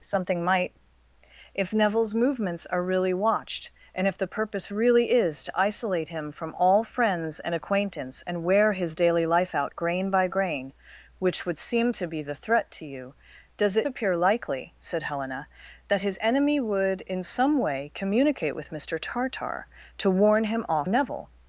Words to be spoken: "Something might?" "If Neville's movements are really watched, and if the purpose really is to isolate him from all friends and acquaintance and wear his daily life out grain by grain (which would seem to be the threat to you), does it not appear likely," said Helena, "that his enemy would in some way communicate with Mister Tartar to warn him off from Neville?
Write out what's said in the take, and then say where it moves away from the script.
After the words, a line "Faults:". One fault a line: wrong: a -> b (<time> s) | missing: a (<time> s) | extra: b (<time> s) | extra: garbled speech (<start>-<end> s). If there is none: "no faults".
"Something might?" "If Neville's movements are really watched, and if the purpose really is to isolate him from all friends and acquaintance and wear his daily life out grain by grain (which would seem to be the threat to you), does it appear likely," said Helena, "that his enemy would in some way communicate with Mister Tartar to warn him off Neville?
Faults:
missing: not (13.9 s)
missing: from (20.9 s)